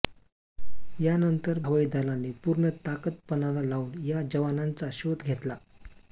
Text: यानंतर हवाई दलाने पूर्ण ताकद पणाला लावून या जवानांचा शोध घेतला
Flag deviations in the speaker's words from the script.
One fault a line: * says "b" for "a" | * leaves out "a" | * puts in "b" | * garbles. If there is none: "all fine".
all fine